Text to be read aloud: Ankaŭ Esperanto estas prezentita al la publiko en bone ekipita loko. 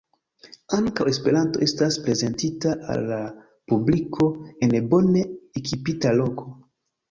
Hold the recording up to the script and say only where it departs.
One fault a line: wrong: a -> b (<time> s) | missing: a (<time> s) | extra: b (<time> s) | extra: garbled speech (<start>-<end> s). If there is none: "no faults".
no faults